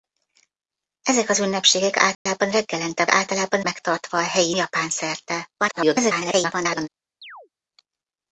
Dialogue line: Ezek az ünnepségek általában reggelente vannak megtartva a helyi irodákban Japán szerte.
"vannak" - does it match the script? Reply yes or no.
no